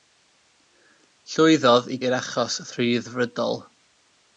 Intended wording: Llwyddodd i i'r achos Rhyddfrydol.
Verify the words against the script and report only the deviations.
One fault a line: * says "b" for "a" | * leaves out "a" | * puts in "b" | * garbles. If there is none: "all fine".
all fine